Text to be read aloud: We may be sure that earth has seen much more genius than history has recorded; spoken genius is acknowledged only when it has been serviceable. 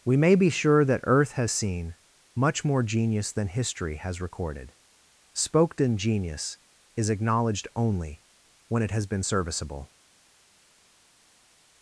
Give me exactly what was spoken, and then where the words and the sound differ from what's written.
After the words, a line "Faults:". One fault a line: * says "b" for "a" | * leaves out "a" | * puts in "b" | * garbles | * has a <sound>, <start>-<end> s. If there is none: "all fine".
We may be sure that earth has seen much more genius than history has recorded; spoken genius is acknowledged only when it has been serviceable.
Faults:
all fine